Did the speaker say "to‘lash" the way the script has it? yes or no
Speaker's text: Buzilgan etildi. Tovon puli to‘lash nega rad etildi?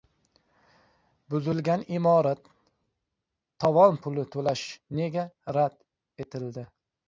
yes